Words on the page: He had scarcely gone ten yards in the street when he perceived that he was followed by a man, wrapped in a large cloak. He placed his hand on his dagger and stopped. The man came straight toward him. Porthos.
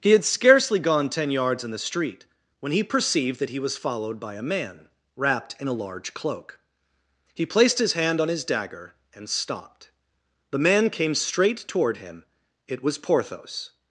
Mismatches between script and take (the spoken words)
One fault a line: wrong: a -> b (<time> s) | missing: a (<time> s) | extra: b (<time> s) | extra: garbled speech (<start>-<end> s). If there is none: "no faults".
extra: It was (12.7 s)